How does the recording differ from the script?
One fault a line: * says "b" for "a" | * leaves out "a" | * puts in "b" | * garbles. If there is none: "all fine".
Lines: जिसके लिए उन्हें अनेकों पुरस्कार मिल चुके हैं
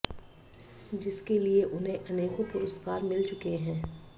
all fine